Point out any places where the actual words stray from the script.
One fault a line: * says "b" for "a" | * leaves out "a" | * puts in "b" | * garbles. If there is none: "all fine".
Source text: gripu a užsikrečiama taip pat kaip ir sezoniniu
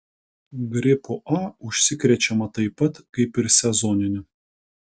all fine